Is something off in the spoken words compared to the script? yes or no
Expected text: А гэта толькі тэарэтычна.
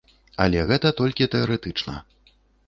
yes